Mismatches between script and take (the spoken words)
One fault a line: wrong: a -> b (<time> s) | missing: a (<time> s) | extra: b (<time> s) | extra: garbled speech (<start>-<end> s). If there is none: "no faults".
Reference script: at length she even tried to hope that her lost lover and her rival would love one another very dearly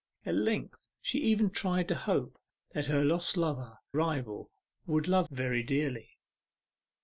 missing: and her (3.8 s)
missing: one another (5.3 s)